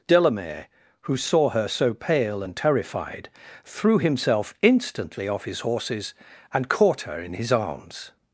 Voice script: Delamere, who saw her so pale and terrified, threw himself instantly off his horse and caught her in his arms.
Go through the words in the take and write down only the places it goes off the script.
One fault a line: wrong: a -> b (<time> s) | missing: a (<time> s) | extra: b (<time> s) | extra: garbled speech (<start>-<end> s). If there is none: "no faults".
wrong: horse -> horses (5.6 s)